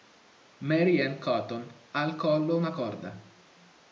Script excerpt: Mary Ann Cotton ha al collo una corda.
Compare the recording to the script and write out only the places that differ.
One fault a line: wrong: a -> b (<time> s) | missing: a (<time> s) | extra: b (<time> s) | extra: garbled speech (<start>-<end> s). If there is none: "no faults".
no faults